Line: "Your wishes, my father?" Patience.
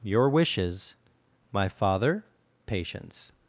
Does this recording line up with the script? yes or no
yes